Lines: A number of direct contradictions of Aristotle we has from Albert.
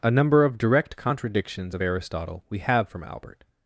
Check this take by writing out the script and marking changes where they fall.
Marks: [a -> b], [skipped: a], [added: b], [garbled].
A number of direct contradictions of Aristotle we [has -> have] from Albert.